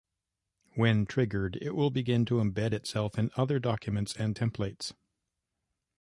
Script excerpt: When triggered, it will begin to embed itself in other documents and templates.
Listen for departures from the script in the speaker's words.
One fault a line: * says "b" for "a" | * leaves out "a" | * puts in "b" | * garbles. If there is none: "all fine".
all fine